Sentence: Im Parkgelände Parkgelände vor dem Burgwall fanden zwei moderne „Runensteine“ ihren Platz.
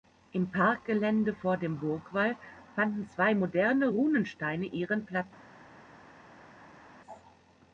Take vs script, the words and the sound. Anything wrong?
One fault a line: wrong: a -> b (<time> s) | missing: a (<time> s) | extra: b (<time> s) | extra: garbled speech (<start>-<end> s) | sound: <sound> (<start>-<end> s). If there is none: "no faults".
missing: Parkgelände (1.3 s)